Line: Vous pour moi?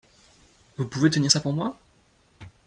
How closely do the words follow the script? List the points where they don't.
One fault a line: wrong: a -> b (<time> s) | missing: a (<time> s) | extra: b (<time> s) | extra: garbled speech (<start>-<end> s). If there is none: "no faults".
extra: pouvez tenir ça (0.9 s)